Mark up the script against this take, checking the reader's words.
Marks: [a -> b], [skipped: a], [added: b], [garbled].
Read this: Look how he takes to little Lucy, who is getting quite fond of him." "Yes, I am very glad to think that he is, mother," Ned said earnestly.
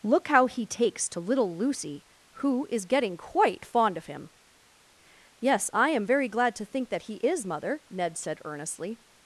Look how he takes to little Lucy, who is getting quite fond of him." "Yes, I am very glad to think that he is, mother," Ned said earnestly.